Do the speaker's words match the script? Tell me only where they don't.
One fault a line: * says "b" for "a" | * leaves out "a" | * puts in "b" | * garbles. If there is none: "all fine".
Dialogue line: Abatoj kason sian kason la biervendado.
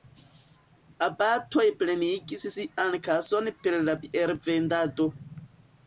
* says "plenigis" for "kason"
* puts in "per"